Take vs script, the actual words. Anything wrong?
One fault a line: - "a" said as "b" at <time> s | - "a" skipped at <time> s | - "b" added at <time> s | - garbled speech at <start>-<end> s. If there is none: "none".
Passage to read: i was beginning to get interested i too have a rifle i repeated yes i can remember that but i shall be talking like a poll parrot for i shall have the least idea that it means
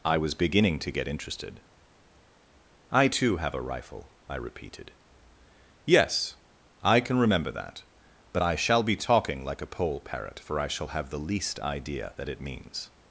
none